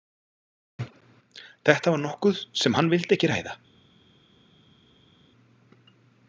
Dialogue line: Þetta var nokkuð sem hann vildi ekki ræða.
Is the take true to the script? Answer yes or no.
yes